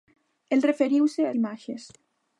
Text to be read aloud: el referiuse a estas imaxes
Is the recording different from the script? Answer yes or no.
yes